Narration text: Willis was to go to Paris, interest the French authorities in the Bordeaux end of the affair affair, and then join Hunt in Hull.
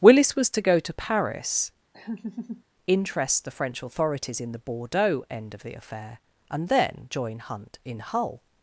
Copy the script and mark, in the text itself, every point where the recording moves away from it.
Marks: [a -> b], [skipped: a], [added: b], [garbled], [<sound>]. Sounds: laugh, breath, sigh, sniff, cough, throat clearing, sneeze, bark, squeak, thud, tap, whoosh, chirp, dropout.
Willis was to go to Paris, [laugh] interest the French authorities in the Bordeaux end of the affair [skipped: affair,] and then join Hunt in Hull.